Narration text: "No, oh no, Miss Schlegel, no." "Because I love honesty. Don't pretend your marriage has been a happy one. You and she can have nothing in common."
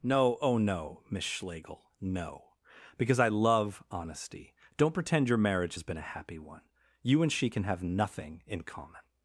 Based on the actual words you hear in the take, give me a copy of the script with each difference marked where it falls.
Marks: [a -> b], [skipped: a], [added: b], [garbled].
"No, oh no, Miss Schlegel, no." "Because I love honesty. Don't pretend your marriage has been a happy one. You and she can have nothing in common."